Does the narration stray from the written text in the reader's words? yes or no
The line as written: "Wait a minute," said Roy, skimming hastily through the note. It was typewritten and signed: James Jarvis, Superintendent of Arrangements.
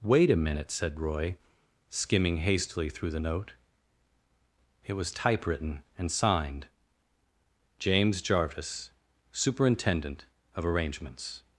no